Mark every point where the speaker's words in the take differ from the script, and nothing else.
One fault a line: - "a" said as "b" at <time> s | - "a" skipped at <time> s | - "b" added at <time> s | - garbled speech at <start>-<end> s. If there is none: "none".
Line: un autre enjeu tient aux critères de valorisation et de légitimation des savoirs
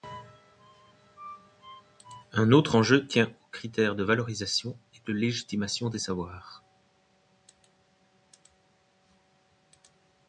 none